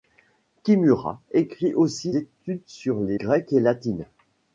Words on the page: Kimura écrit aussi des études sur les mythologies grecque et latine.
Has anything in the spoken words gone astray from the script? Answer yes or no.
yes